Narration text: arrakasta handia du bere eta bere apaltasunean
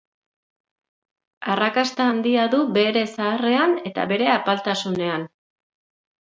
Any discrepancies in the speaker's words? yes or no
yes